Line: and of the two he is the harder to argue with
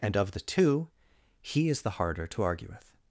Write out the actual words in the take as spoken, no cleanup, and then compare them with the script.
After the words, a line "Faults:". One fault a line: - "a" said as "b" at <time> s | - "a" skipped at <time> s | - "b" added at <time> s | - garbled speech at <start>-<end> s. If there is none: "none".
and of the two he is the harder to argue with
Faults:
none